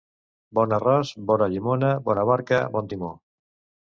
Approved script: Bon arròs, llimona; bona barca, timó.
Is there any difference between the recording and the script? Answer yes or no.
yes